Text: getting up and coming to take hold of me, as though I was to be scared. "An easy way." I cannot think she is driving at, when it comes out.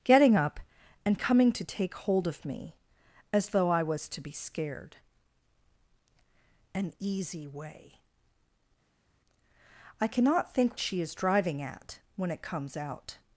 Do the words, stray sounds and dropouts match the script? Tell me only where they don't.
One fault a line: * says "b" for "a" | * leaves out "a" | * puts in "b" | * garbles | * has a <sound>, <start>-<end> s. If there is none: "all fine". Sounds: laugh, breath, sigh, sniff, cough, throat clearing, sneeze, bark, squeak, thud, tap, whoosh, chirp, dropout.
all fine